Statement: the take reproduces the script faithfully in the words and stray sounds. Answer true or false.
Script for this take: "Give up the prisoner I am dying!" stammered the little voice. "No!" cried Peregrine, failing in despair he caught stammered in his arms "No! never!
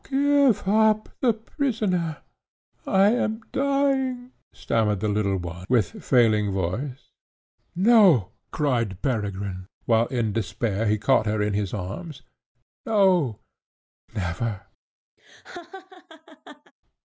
false